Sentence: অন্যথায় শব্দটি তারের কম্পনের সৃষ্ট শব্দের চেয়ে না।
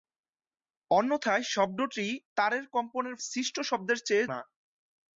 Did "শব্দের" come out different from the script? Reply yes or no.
no